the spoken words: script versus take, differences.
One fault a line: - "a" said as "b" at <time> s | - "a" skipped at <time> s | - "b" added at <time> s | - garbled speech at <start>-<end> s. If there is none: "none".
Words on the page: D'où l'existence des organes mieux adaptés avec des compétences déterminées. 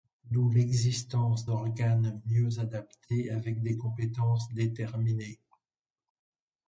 - "des" skipped at 1.4 s